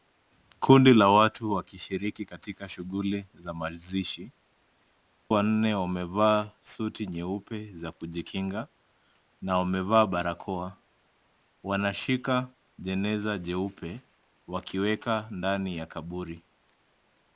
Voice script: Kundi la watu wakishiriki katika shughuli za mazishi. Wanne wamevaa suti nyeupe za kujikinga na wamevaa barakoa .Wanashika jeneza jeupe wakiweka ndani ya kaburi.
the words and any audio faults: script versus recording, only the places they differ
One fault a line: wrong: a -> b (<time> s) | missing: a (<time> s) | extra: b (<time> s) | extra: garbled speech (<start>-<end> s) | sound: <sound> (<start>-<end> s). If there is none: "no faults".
no faults